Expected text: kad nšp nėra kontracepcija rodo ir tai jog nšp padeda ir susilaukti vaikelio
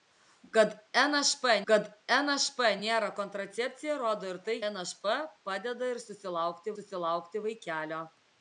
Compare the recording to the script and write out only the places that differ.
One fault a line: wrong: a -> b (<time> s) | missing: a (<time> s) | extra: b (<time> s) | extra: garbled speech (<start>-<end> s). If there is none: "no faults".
extra: kad nšp (1.7 s)
missing: jog (4.6 s)
extra: susilaukti (6.7 s)